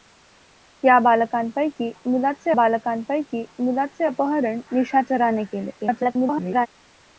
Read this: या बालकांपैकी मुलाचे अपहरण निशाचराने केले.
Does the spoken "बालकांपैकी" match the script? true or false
true